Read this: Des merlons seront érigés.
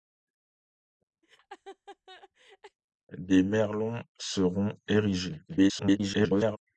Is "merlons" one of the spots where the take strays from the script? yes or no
no